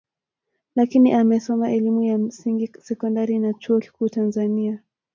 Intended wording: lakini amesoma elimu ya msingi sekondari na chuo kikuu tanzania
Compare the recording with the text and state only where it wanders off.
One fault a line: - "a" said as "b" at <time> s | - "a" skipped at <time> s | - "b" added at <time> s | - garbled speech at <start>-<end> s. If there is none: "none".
none